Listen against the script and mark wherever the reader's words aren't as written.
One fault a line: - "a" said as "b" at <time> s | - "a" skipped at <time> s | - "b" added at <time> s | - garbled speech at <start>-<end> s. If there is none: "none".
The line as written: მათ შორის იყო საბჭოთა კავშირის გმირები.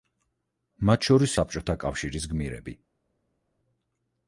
- "იყო" skipped at 1.4 s